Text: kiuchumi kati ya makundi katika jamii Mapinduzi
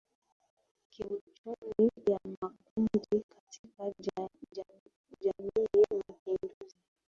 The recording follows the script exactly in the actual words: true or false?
false